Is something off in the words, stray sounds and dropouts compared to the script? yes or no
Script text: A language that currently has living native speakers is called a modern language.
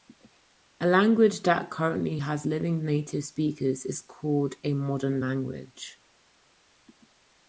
no